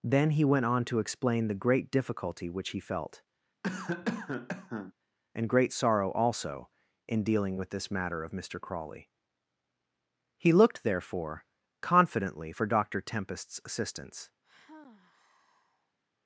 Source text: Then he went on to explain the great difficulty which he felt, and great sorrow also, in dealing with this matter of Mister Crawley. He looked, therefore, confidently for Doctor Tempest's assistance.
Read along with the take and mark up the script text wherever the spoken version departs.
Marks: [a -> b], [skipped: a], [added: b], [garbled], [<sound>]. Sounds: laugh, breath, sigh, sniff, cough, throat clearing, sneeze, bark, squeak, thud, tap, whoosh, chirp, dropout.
Then he went on to explain the great difficulty which he felt, [cough] and great sorrow also, in dealing with this matter of Mister Crawley. He looked, therefore, confidently for Doctor Tempest's assistance. [sigh]